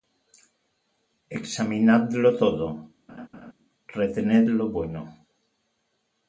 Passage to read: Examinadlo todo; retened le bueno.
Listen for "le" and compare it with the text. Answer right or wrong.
wrong